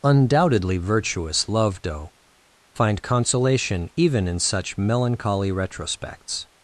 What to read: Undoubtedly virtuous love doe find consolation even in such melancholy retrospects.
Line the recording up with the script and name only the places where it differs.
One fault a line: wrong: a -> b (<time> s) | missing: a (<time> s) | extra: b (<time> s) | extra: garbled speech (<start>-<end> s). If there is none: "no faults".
no faults